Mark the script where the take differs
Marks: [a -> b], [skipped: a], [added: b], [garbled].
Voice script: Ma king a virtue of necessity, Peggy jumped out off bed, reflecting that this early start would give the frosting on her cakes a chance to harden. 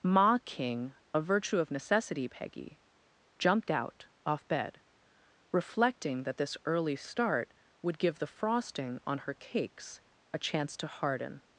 Ma king a virtue of necessity, Peggy jumped out off bed, reflecting that this early start would give the frosting on her cakes a chance to harden.